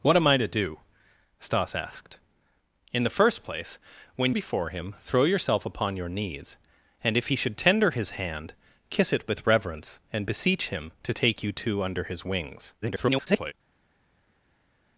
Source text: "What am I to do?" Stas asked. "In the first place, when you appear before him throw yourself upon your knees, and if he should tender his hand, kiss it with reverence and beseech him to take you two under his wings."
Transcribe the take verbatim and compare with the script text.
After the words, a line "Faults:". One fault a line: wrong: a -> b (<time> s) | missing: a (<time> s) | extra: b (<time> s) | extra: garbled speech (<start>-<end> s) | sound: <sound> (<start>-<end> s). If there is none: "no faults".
"What am I to do?" Stas asked. "In the first place, when before him throw yourself upon your knees, and if he should tender his hand, kiss it with reverence and beseech him to take you two under his wings." [garbled]
Faults:
missing: you appear (4.3 s)
extra: garbled speech (12.8-13.5 s)